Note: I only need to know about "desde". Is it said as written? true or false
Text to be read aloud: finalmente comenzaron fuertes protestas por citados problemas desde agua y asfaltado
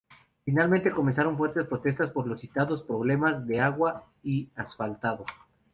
false